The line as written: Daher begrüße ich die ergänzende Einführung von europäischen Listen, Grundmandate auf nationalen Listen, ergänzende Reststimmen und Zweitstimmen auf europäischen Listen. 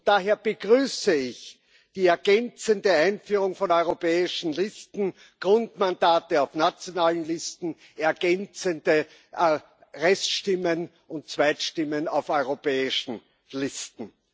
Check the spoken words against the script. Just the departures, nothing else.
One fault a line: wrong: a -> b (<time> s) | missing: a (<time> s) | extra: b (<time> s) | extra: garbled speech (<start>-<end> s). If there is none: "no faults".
no faults